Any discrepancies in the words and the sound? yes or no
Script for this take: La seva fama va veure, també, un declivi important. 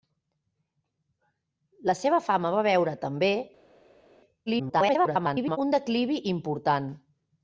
yes